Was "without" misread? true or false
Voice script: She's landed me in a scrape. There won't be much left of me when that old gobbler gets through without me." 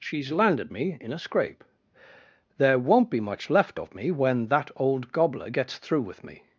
true